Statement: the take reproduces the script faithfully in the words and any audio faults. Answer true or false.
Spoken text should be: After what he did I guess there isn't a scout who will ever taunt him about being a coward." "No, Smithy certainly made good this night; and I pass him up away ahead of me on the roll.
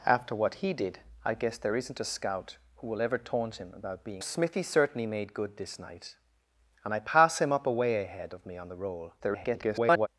false